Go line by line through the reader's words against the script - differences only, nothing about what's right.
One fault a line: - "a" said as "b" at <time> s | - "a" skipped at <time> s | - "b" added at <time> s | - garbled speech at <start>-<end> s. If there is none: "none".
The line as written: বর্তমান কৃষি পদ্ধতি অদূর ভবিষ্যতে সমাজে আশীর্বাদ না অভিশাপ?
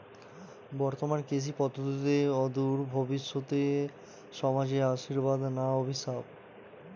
none